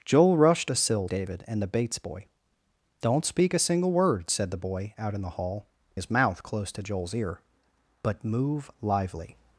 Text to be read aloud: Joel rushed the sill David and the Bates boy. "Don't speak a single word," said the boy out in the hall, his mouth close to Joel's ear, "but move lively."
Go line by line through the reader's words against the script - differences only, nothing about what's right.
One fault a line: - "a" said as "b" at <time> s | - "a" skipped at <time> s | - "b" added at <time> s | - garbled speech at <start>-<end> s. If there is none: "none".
none